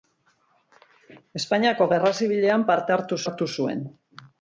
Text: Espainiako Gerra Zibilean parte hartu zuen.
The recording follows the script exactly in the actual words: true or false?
false